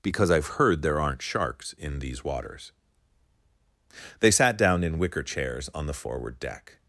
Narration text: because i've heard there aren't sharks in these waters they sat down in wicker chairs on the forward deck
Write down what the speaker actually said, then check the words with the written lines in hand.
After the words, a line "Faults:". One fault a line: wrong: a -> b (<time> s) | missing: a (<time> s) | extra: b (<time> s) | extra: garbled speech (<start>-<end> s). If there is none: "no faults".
because i've heard there aren't sharks in these waters they sat down in wicker chairs on the forward deck
Faults:
no faults